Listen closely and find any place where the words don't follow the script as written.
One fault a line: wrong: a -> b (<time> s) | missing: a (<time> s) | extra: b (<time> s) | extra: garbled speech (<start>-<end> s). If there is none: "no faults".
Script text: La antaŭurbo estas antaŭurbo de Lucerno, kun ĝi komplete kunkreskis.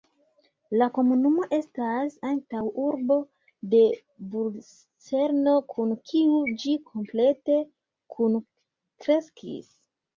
wrong: antaŭurbo -> komunumo (1.0 s)
extra: kiu (6.1 s)